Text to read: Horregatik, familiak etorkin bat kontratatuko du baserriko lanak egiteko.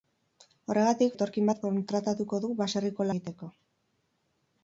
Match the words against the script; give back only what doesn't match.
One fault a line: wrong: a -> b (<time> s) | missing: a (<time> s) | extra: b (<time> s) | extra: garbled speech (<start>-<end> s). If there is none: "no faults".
missing: familiak (1.1 s)
missing: lanak (3.1 s)